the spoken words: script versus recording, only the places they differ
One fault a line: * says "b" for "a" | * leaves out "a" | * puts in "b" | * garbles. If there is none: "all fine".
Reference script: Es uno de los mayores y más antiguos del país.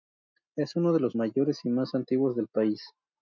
all fine